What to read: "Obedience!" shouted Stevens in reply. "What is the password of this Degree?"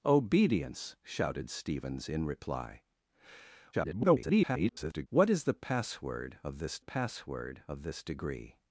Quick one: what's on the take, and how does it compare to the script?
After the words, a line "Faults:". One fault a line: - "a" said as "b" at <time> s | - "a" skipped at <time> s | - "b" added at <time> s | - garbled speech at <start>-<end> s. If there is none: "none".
"Obedience!" shouted Stevens in reply. [garbled] "What is the password of this password of this Degree?"
Faults:
- garbled speech at 3.7-5.1 s
- "password of this" added at 6.8 s